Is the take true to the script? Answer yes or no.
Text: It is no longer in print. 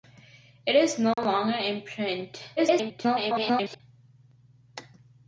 no